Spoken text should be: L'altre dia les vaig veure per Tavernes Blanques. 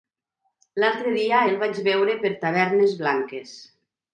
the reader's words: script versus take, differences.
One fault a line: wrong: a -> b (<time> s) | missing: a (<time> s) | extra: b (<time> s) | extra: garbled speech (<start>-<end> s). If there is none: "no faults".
wrong: les -> el (1.5 s)